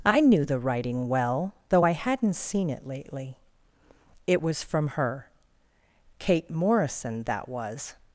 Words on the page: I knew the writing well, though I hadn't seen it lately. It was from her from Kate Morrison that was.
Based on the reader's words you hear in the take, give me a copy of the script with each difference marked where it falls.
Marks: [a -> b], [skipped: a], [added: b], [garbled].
I knew the writing well, though I hadn't seen it lately. It was from her [skipped: from] Kate Morrison that was.